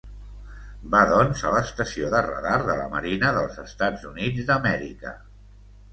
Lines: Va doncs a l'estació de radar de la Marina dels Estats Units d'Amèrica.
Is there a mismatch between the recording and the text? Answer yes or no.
no